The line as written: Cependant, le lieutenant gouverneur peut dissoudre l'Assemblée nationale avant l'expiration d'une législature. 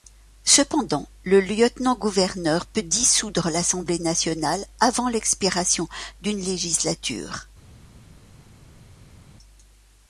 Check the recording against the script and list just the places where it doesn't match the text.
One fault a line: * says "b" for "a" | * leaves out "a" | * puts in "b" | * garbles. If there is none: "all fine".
all fine